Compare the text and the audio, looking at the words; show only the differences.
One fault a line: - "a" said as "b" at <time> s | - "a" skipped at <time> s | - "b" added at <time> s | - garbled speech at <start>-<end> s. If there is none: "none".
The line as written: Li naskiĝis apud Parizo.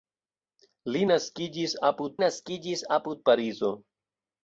- "naskiĝis apud" added at 2.2 s